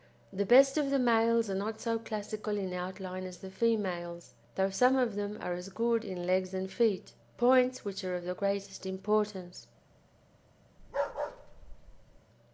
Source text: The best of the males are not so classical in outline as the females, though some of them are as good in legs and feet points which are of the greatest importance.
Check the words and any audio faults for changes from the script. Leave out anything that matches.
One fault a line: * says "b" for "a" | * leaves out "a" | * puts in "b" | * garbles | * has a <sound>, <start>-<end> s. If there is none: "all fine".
* has a bark, 10.8-12.2 s